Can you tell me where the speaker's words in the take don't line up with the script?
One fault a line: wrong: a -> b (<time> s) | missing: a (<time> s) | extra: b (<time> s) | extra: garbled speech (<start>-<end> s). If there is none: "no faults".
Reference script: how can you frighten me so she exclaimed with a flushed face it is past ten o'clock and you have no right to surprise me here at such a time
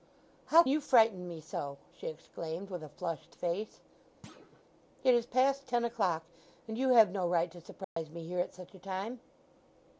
missing: can (0.6 s)